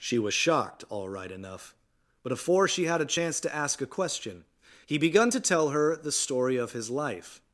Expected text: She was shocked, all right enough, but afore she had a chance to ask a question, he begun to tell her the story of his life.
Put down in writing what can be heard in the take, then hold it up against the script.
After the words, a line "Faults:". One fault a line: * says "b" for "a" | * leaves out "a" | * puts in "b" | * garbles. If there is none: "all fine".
She was shocked, all right enough, but afore she had a chance to ask a question, he begun to tell her the story of his life.
Faults:
all fine